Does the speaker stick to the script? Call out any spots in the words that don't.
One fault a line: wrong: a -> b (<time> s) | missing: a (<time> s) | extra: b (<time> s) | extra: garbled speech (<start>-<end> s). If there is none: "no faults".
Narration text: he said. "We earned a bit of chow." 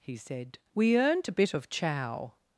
no faults